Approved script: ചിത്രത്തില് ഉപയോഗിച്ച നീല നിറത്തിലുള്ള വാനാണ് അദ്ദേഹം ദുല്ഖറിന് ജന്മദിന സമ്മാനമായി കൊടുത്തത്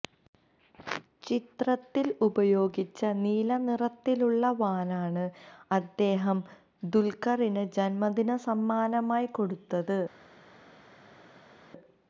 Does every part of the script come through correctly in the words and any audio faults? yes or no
yes